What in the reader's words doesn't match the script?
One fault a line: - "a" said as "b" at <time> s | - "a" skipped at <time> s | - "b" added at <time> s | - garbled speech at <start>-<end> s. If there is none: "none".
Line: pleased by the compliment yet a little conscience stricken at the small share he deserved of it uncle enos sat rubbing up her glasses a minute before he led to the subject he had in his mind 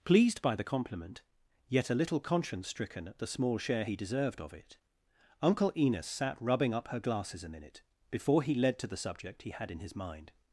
none